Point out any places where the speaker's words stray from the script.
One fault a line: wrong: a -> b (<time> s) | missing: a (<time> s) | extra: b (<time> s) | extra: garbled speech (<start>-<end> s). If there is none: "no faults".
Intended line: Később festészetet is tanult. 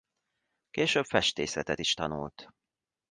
no faults